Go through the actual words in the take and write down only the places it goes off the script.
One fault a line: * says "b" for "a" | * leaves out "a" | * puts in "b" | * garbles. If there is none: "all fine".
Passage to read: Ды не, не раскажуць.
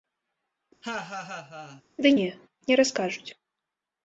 all fine